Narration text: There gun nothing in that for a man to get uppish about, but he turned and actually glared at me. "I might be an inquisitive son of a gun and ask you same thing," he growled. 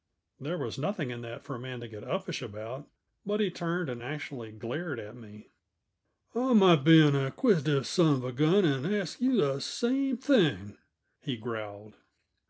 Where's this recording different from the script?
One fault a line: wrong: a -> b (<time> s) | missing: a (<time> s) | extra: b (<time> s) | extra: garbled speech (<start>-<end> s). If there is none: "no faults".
wrong: gun -> was (0.6 s)
extra: the (9.4 s)